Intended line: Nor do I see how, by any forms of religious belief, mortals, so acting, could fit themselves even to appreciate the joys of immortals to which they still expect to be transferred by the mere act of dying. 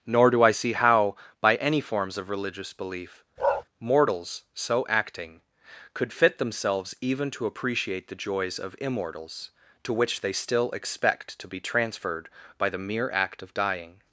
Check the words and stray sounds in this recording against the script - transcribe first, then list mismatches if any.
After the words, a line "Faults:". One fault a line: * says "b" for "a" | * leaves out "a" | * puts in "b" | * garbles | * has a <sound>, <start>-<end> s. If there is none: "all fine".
Nor do I see how, by any forms of religious belief, mortals, so acting, could fit themselves even to appreciate the joys of immortals to which they still expect to be transferred by the mere act of dying.
Faults:
* has a bark, 3.4-3.6 s